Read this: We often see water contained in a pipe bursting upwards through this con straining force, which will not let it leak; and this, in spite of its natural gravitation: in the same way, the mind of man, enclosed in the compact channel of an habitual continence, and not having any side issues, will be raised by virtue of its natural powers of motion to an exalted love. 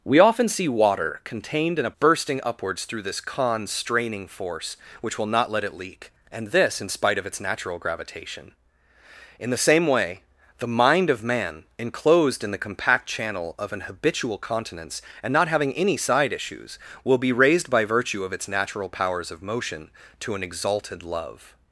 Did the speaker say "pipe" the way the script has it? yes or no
no